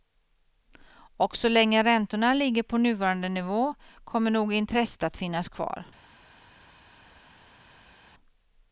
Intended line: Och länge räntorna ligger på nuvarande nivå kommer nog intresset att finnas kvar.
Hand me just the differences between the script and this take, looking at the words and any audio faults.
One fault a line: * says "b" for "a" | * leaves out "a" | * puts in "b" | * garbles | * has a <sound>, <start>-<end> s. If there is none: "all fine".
* puts in "så"